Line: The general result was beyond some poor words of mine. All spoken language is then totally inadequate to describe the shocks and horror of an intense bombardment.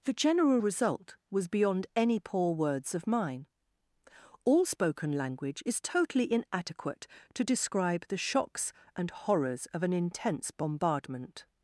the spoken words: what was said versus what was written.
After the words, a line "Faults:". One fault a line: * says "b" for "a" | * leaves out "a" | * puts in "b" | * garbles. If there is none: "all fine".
The general result was beyond any poor words of mine. All spoken language is totally inadequate to describe the shocks and horrors of an intense bombardment.
Faults:
* says "any" for "some"
* leaves out "then"
* says "horrors" for "horror"